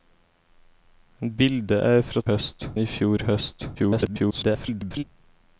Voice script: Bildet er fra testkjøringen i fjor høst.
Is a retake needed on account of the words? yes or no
yes